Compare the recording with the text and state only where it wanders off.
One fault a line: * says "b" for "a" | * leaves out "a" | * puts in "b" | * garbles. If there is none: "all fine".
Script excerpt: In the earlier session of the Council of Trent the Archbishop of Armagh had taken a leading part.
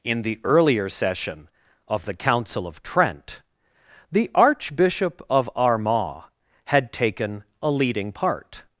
all fine